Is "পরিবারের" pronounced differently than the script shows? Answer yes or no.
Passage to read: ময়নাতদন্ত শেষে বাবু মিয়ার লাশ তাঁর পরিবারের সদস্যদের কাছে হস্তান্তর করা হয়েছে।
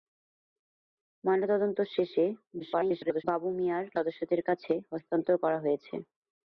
yes